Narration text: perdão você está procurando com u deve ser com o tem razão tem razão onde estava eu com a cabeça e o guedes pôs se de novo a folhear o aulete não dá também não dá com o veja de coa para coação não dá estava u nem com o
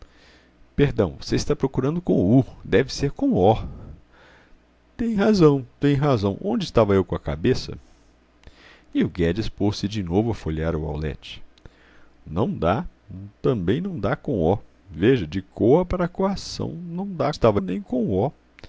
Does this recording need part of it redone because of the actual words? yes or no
no